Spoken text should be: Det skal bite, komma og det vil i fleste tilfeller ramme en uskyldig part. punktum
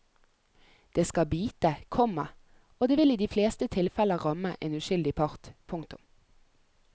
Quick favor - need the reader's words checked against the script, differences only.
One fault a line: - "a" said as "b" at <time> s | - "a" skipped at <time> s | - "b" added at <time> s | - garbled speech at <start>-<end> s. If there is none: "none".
- "de" added at 3.2 s